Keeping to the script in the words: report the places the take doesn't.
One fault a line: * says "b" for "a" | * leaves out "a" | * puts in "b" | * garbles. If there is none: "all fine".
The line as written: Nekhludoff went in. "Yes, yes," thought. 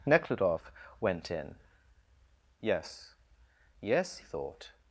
all fine